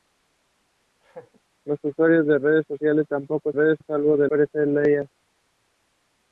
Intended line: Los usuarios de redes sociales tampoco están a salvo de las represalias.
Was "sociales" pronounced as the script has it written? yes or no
yes